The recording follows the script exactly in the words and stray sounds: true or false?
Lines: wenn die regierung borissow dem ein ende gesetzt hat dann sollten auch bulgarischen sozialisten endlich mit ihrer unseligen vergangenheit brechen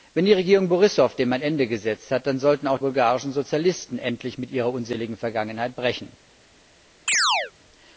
false